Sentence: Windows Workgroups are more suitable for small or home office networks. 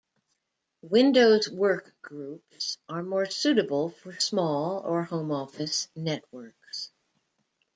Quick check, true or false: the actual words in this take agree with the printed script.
true